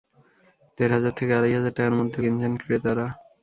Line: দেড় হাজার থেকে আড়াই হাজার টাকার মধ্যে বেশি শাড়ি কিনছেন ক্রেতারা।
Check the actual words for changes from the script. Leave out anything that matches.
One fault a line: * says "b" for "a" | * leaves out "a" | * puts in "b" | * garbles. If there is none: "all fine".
* leaves out "বেশি শাড়ি"